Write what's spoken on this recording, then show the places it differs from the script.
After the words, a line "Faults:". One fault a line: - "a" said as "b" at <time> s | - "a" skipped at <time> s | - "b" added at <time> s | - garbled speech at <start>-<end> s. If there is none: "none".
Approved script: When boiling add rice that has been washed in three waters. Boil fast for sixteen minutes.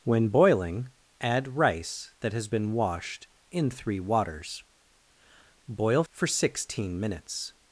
When boiling add rice that has been washed in three waters. Boil for sixteen minutes.
Faults:
- "fast" skipped at 6.0 s